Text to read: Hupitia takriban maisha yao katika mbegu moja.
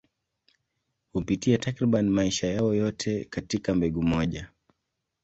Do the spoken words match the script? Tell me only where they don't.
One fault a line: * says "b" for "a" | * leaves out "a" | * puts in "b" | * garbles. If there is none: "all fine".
* puts in "yote"